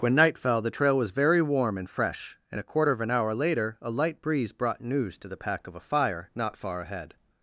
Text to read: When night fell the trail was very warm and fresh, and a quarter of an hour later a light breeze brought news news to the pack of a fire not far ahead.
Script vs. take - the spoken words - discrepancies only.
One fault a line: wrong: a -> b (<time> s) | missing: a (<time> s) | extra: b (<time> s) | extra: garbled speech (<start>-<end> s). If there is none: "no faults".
missing: news (5.2 s)